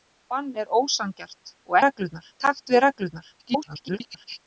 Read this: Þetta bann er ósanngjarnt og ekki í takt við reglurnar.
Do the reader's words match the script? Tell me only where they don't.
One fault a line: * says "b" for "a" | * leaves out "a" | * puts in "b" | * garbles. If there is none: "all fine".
* says "reglurnar" for "ekki"
* garbles